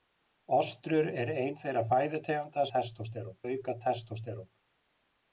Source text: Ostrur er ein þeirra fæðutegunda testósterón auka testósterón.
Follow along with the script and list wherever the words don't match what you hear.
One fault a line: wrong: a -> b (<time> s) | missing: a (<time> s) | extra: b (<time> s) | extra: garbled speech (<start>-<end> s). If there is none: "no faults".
no faults